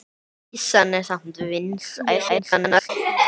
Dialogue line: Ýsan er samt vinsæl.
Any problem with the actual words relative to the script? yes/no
yes